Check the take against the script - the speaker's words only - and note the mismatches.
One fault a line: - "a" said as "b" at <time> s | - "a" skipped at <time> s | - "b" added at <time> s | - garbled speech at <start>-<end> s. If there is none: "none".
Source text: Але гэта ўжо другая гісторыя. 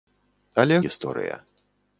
- "гэта ўжо другая" skipped at 0.8 s